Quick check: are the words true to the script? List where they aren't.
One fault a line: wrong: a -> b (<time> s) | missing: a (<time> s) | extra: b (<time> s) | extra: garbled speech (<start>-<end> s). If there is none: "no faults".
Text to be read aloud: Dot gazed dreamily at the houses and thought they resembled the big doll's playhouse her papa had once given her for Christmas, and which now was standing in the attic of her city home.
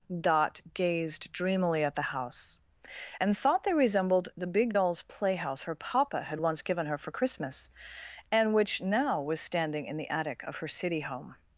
wrong: houses -> house (2.0 s)